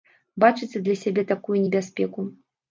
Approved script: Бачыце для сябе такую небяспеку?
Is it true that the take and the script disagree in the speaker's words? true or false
false